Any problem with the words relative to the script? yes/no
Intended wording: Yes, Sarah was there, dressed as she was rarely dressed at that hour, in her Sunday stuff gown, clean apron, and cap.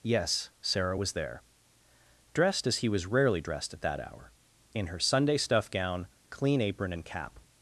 yes